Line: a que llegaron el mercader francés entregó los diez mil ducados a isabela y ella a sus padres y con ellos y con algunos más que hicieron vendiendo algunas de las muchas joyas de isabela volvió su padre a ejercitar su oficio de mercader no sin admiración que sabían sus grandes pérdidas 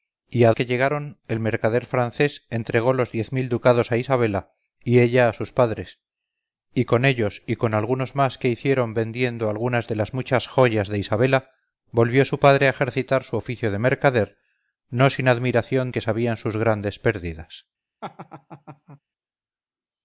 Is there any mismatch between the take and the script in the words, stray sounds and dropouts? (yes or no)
yes